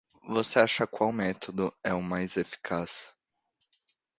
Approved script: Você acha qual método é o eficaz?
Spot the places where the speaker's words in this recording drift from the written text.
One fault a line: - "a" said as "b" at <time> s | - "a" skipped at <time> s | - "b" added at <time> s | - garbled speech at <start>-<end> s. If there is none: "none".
- "mais" added at 2.0 s